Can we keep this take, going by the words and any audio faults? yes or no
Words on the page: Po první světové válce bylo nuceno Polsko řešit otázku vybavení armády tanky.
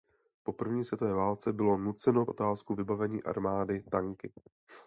no